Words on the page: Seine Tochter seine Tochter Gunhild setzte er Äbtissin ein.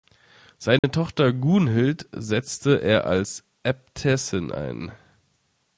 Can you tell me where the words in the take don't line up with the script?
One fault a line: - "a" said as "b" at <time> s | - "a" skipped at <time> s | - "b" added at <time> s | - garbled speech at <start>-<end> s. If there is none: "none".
- "seine Tochter" skipped at 1.3 s
- "als" added at 3.1 s